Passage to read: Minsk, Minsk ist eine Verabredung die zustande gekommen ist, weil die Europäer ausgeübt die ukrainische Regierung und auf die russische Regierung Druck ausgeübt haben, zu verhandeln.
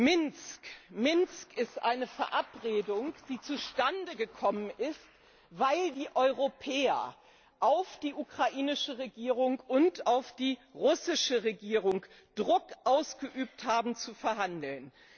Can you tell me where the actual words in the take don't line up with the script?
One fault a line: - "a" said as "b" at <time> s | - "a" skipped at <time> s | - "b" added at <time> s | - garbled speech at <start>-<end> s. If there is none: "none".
- "ausgeübt" said as "auf" at 7.6 s